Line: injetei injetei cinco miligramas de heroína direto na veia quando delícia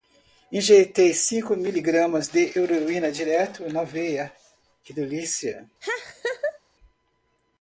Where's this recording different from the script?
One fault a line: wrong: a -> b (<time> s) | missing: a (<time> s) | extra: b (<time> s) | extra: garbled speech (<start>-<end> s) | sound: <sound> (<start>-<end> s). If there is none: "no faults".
missing: injetei (1.1 s)
wrong: quando -> que (4.8 s)
sound: laugh (5.8-6.6 s)